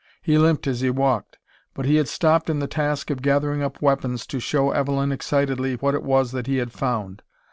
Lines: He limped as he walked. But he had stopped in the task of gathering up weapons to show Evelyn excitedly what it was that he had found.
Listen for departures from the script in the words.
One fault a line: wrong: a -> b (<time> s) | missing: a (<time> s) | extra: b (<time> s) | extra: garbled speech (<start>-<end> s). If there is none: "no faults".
no faults